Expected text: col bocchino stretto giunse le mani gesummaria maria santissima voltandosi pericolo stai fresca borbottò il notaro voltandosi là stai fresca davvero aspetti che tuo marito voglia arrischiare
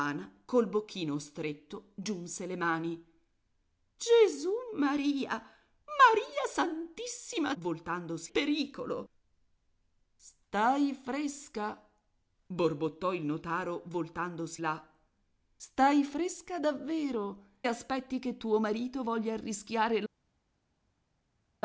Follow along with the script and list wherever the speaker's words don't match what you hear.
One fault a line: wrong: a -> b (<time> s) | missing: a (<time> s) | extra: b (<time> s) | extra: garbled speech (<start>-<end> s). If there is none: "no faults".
no faults